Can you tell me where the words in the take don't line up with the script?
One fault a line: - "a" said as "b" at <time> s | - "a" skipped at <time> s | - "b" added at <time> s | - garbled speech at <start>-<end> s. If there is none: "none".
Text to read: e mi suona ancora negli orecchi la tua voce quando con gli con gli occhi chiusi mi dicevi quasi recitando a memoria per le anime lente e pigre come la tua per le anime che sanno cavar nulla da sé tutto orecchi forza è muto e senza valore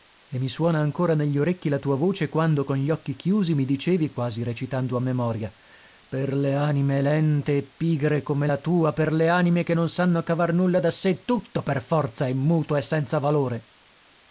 - "con gli" skipped at 2.9 s
- "non" added at 9.7 s
- "orecchi" said as "per" at 11.6 s